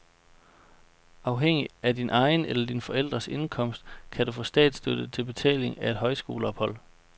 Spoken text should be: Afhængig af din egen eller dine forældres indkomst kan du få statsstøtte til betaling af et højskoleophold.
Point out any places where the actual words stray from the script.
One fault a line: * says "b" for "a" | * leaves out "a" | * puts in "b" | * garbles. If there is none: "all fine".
all fine